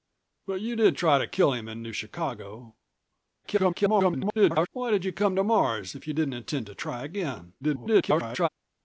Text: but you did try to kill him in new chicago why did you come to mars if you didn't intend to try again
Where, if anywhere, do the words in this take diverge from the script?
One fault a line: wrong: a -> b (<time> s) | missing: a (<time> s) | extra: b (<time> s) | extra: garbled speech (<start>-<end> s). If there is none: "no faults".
extra: garbled speech (3.4-4.7 s)
extra: garbled speech (7.6-8.5 s)